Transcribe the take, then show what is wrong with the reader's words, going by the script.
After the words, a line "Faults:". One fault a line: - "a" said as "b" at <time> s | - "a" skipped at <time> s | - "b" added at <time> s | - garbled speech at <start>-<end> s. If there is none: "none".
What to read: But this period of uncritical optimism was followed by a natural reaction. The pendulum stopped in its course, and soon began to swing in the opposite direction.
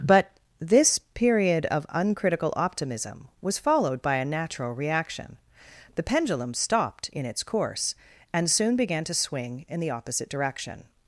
But this period of uncritical optimism was followed by a natural reaction. The pendulum stopped in its course, and soon began to swing in the opposite direction.
Faults:
none